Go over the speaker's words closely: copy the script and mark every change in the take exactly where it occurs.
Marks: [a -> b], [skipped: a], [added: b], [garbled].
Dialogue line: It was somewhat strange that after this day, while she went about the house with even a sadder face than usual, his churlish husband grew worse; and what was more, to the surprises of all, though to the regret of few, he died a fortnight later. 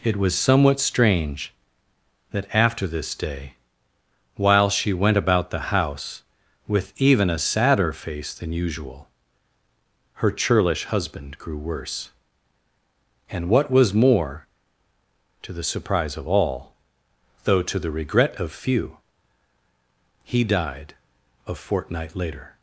It was somewhat strange that after this day, while she went about the house with even a sadder face than usual, [his -> her] churlish husband grew worse; and what was more, to the [surprises -> surprise] of all, though to the regret of few, he died a fortnight later.